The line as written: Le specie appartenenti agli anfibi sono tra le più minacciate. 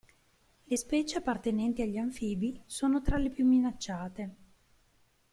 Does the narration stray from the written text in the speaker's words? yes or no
no